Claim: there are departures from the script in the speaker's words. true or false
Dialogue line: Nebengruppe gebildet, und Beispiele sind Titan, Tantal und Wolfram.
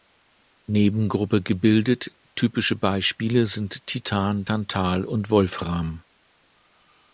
true